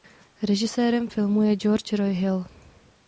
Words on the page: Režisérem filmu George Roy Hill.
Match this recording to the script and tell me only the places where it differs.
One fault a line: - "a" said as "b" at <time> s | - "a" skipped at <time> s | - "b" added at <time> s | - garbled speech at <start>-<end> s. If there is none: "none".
- "je" added at 1.4 s